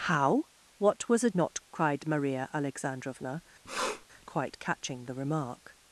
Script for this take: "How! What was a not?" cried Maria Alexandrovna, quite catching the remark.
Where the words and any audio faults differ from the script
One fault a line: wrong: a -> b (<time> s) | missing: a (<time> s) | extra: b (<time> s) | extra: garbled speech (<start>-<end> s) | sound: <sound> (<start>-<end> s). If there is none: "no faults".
sound: sniff (3.6-4.1 s)